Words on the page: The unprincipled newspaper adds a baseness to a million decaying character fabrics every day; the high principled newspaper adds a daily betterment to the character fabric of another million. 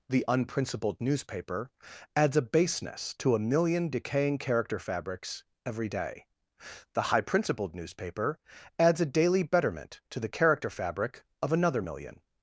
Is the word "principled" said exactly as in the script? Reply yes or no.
yes